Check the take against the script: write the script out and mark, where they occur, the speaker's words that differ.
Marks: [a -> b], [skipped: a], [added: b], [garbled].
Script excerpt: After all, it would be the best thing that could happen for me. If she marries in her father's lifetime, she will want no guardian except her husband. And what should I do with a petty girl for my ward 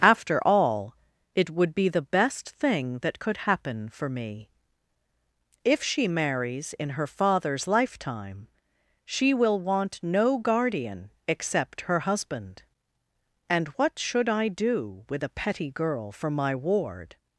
After all, it would be the best thing that could happen for me. If she marries in her father's lifetime, she will want no guardian except her husband. And what should I do with a petty girl for my ward